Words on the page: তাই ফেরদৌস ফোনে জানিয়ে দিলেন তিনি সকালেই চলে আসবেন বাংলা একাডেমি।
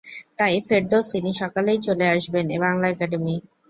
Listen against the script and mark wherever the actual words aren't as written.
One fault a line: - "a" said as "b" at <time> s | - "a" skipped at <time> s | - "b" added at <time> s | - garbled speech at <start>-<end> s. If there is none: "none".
- "ফোনে জানিয়ে দিলেন" skipped at 1.1 s